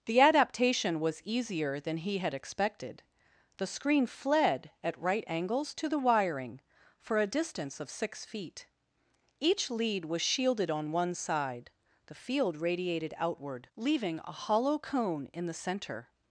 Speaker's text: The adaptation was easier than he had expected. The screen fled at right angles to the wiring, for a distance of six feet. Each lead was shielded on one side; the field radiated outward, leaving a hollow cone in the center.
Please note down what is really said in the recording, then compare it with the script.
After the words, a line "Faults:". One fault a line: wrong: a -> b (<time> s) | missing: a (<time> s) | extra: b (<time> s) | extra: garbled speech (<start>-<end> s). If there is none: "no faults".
The adaptation was easier than he had expected. The screen fled at right angles to the wiring, for a distance of six feet. Each lead was shielded on one side; the field radiated outward, leaving a hollow cone in the center.
Faults:
no faults